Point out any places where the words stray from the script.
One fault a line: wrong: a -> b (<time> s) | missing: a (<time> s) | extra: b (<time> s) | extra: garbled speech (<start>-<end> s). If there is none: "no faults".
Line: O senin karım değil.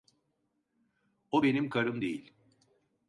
wrong: senin -> benim (1.4 s)